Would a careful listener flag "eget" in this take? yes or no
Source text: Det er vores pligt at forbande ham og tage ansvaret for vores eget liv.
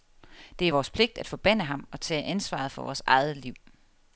no